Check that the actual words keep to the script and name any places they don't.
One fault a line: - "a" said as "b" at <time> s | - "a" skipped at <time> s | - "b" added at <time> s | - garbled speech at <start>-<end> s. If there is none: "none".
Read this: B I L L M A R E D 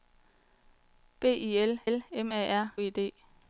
none